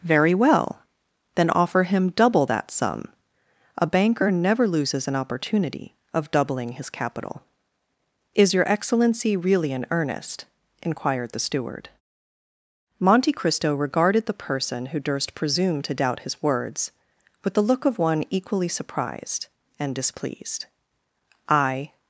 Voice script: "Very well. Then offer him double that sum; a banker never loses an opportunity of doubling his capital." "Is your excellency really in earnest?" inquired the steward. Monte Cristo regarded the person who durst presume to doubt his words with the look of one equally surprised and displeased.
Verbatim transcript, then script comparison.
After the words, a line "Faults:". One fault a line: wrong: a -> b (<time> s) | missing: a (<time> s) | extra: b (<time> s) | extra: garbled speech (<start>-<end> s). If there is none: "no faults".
"Very well. Then offer him double that sum; a banker never loses an opportunity of doubling his capital." "Is your excellency really in earnest?" inquired the steward. Monte Cristo regarded the person who durst presume to doubt his words with the look of one equally surprised and displeased. "I
Faults:
extra: I (21.5 s)